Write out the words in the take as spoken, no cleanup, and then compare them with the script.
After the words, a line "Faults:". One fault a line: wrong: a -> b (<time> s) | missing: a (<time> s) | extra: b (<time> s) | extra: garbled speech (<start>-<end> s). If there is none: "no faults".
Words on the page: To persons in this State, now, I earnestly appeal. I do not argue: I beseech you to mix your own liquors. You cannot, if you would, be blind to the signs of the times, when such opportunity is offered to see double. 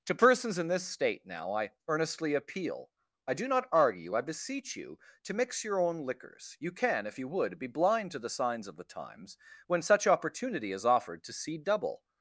To persons in this State, now, I earnestly appeal. I do not argue: I beseech you to mix your own liquors. You can, if you would, be blind to the signs of the times, when such opportunity is offered to see double.
Faults:
wrong: cannot -> can (6.7 s)